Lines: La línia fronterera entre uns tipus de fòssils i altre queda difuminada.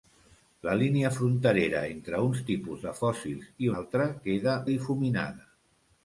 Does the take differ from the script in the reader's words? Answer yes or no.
no